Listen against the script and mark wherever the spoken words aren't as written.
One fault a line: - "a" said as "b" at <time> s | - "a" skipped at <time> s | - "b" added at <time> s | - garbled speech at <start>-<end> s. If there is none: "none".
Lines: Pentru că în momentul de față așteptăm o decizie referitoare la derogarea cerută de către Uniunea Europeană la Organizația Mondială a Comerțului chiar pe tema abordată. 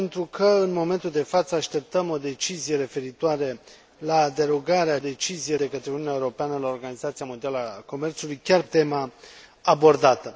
- "cerută" said as "decizie" at 5.0 s
- "pe" skipped at 8.6 s